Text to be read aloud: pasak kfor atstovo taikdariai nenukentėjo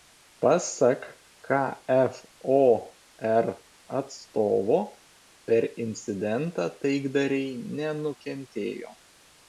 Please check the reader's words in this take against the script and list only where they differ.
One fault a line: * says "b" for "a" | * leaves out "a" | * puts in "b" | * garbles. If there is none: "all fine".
* puts in "per incidentą"